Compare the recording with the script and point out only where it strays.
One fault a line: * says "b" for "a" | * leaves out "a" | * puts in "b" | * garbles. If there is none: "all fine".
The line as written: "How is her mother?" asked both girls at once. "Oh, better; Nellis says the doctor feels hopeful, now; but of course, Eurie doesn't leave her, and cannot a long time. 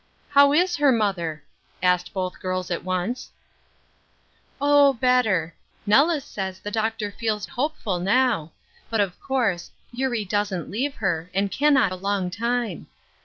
all fine